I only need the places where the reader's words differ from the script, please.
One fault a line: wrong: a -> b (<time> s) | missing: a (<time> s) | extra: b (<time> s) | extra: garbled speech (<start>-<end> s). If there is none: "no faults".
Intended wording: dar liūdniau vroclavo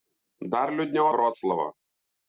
no faults